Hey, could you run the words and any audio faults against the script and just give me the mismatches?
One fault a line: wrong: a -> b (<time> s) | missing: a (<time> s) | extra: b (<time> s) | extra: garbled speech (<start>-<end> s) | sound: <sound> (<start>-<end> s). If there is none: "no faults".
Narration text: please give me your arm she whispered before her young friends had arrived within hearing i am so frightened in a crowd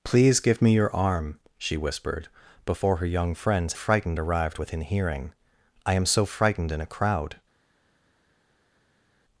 wrong: had -> frightened (3.7 s)